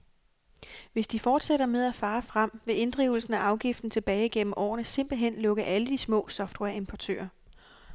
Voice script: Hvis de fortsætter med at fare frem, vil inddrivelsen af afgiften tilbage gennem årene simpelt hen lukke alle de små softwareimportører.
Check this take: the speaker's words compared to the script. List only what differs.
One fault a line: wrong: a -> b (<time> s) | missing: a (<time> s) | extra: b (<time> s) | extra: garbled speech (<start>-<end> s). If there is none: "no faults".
no faults